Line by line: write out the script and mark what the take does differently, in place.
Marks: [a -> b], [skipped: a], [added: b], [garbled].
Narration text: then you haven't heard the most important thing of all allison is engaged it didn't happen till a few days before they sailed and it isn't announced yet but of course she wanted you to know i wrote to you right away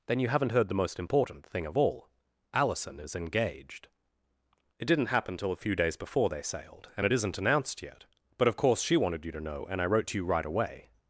then you haven't heard the most important thing of all allison is engaged it didn't happen till a few days before they sailed and it isn't announced yet but of course she wanted you to know [added: and] i wrote to you right away